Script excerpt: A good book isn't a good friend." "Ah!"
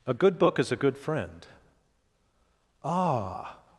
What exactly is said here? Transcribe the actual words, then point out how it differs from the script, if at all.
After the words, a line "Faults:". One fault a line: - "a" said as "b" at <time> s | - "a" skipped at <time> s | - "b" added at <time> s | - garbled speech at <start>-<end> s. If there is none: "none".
A good book is a good friend." "Ah!"
Faults:
- "isn't" said as "is" at 0.6 s